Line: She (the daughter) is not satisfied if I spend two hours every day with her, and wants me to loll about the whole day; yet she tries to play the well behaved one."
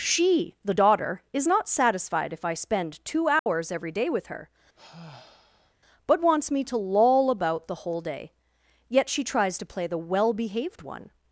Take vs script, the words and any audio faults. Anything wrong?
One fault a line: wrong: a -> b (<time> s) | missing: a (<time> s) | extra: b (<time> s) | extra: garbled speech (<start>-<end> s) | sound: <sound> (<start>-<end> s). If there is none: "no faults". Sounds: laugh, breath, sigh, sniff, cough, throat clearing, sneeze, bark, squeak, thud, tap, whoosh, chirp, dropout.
sound: dropout (3.4-3.5 s)
sound: sigh (4.8-5.7 s)
wrong: and -> but (6.1 s)